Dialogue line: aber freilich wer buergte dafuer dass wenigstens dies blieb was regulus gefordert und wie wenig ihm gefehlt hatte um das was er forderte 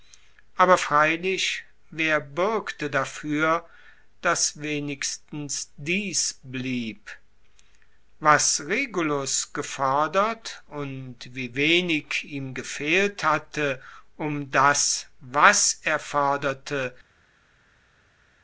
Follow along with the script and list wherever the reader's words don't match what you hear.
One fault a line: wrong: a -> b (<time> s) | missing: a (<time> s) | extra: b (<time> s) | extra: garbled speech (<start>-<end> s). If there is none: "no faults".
no faults